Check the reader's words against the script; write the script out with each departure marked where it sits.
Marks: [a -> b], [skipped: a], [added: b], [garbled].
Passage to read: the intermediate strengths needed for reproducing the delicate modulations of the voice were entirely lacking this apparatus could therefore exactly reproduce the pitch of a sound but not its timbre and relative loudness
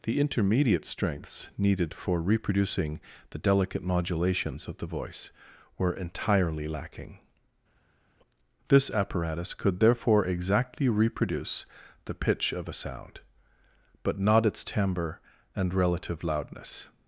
the intermediate strengths needed for reproducing the delicate modulations of the voice were entirely lacking this apparatus could therefore exactly reproduce the pitch of a sound but not its timbre and relative loudness